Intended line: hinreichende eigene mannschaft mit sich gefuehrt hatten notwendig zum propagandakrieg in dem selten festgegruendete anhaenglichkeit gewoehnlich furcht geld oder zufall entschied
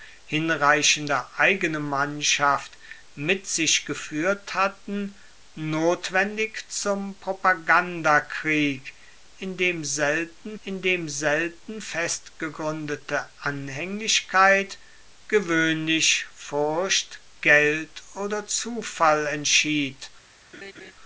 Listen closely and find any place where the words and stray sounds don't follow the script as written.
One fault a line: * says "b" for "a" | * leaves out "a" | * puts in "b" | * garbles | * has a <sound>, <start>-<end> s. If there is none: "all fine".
* puts in "in dem selten"
* has a laugh, 20.5-20.9 s